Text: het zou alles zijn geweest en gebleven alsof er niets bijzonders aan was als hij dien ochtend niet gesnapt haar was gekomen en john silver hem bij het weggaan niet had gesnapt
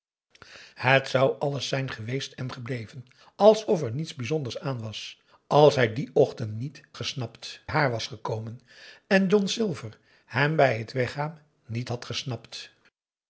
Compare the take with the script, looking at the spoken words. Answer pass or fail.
pass